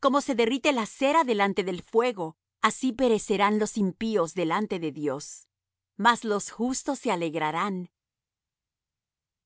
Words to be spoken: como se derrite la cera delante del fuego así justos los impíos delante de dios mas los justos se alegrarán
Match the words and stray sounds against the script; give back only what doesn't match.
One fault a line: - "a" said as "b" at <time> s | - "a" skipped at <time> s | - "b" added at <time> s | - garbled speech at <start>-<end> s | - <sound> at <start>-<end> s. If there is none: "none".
- "justos" said as "perecerán" at 2.9 s